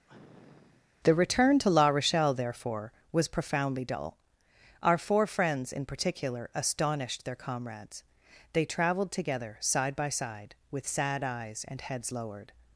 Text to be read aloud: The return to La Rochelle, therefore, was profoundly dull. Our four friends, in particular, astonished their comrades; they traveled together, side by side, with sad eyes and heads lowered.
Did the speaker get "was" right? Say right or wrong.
right